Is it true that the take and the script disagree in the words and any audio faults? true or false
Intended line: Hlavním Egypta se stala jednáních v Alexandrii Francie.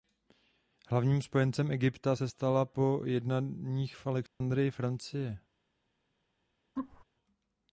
true